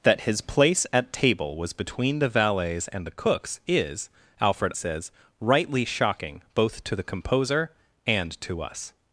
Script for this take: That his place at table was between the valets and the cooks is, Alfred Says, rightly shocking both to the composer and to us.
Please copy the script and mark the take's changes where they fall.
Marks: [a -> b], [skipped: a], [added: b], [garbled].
That his place at table was between the valets and the cooks is, Alfred Says, rightly shocking both to the composer and to us.